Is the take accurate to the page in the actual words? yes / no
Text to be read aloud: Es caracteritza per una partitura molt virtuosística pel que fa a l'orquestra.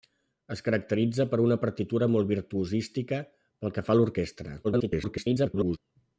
no